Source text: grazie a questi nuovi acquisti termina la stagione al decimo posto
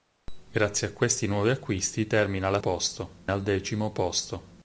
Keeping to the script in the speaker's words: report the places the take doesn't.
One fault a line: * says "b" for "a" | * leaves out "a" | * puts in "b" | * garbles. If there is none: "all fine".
* says "posto" for "stagione"